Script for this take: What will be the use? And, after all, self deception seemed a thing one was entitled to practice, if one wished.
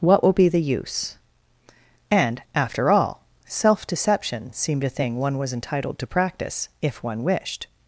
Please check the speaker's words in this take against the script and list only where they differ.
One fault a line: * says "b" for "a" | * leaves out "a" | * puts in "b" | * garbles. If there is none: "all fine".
all fine